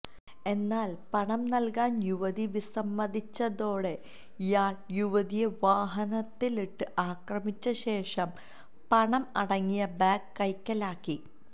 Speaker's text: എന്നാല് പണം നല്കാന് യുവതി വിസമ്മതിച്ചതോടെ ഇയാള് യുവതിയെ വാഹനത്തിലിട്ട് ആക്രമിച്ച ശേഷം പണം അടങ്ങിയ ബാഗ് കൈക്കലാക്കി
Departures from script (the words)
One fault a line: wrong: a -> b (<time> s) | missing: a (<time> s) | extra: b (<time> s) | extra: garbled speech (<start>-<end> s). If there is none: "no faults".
no faults